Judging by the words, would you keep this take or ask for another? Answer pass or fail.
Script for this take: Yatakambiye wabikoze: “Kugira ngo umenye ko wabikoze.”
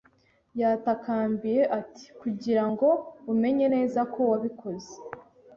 fail